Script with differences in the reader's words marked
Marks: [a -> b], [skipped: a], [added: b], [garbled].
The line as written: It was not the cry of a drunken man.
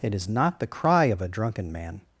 It [was -> is] not the cry of a drunken man.